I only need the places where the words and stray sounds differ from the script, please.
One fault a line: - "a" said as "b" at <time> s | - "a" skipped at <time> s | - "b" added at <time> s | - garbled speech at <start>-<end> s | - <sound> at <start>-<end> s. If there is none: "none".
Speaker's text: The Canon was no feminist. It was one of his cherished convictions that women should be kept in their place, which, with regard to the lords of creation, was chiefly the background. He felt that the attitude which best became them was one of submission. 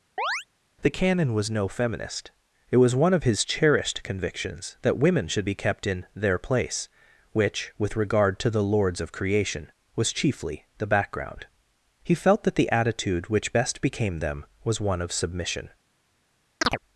- chirp at 0.2-0.5 s
- chirp at 16.6-16.8 s